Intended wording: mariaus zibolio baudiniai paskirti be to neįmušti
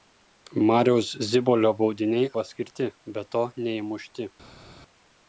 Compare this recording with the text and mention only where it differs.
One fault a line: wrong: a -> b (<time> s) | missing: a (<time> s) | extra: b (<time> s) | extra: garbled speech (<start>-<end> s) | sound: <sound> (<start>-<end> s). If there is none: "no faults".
no faults